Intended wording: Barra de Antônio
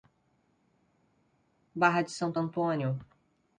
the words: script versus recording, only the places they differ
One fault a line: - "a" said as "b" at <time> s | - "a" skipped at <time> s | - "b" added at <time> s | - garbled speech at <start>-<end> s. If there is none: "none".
- "Santo" added at 2.1 s